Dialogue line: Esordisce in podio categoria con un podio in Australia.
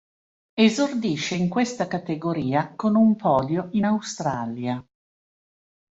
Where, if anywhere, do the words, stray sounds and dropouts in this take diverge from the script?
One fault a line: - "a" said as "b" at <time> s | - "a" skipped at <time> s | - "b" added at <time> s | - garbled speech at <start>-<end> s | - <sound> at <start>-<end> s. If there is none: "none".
- "podio" said as "questa" at 1.5 s